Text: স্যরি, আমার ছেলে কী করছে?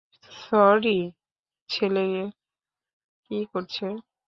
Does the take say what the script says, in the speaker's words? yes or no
no